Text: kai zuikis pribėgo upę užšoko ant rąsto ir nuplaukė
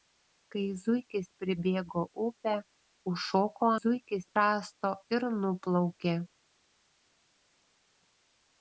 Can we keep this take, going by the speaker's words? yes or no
no